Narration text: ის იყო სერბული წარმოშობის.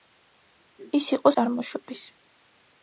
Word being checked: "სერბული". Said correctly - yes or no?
no